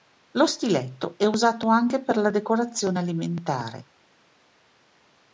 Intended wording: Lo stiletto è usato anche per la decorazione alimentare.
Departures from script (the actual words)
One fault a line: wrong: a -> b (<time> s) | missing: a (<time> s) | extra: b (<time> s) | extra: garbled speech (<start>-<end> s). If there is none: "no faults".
no faults